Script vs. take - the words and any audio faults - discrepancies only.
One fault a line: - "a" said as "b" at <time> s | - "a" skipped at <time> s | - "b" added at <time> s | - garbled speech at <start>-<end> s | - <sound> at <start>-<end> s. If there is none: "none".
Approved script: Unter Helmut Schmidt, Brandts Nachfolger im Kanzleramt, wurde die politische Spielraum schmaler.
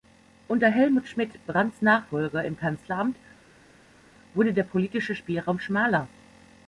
- "die" said as "der" at 4.5 s